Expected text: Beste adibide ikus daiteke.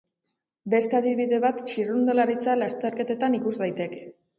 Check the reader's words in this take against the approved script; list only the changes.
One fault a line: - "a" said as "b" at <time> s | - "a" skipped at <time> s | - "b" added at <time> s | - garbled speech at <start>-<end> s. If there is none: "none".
- "bat txirrindularitza lasterketetan" added at 1.4 s